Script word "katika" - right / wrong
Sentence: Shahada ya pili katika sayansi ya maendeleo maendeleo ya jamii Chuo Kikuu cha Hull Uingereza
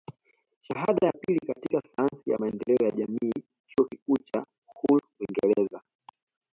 right